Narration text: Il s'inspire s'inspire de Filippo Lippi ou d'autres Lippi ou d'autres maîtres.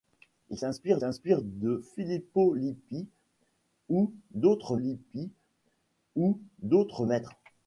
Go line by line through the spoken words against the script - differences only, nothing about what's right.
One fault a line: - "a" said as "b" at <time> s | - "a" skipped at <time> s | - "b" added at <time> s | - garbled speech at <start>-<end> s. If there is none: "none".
none